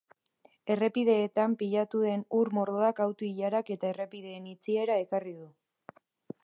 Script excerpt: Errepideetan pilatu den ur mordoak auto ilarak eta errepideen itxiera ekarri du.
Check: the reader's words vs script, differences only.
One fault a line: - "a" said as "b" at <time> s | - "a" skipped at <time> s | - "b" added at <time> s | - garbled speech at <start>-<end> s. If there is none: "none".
none